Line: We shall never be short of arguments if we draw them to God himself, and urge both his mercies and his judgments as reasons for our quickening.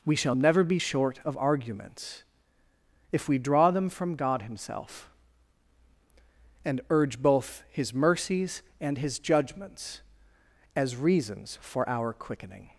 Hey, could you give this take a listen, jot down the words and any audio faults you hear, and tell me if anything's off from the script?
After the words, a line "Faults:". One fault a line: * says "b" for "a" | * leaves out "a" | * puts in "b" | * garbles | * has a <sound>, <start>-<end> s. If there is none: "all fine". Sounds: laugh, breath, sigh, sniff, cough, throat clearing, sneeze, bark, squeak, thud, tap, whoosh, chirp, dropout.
We shall never be short of arguments if we draw them from God himself, and urge both his mercies and his judgments as reasons for our quickening.
Faults:
* says "from" for "to"